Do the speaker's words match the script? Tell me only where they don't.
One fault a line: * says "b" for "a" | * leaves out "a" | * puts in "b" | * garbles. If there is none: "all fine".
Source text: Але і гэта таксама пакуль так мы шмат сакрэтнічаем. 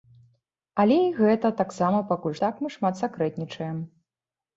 all fine